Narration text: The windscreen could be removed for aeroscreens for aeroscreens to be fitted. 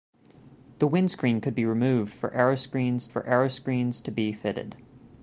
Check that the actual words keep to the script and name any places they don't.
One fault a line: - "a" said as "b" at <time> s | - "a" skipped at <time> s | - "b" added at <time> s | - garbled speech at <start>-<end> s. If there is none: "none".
none